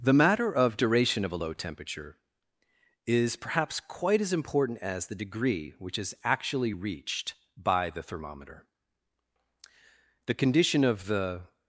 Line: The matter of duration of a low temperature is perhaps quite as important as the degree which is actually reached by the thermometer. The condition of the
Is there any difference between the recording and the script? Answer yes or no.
no